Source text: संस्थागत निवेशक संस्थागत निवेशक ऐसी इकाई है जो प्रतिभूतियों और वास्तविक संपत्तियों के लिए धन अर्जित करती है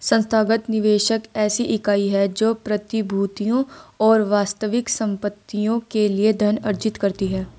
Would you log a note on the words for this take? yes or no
yes